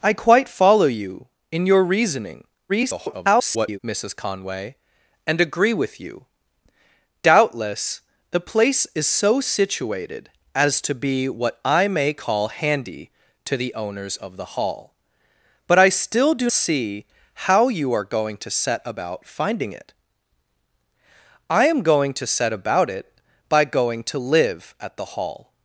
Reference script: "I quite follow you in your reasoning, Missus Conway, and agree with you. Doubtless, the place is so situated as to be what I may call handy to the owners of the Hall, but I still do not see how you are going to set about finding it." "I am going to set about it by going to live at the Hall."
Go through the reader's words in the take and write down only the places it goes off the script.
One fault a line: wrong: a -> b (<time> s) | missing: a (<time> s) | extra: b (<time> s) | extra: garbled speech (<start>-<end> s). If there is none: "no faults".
extra: garbled speech (2.7-3.8 s)
missing: not (16.5 s)